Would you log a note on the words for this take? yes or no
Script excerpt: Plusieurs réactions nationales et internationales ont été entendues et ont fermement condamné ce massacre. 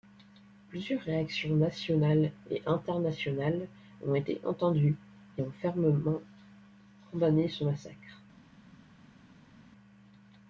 no